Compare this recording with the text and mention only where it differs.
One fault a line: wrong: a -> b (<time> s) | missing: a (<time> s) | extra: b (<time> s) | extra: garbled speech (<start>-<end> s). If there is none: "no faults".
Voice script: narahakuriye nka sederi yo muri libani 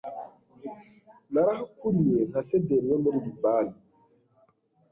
no faults